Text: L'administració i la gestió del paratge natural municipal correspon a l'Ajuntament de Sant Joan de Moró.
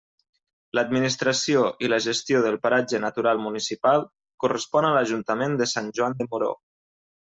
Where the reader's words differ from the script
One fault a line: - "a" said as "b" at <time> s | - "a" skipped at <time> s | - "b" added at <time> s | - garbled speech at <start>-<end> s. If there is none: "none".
none